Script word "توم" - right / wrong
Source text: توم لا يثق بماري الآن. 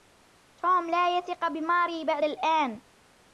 right